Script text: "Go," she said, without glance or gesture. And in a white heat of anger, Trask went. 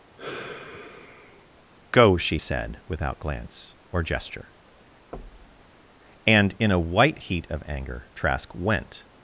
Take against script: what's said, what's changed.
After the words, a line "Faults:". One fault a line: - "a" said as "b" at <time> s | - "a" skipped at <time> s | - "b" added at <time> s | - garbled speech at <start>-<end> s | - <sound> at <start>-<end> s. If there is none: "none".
"Go," she said, without glance or gesture. And in a white heat of anger, Trask went.
Faults:
- sigh at 0.2-1.5 s
- thud at 5.1-5.7 s